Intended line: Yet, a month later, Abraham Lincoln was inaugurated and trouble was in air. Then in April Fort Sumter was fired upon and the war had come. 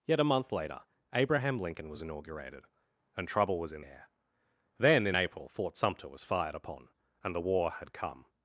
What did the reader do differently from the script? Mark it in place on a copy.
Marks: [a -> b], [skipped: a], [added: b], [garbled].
Yet, a month later, Abraham Lincoln was inaugurated and trouble was in air. Then in April Fort Sumter was fired upon and the war had come.